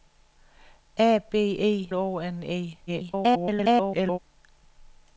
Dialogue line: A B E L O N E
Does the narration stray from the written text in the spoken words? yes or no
yes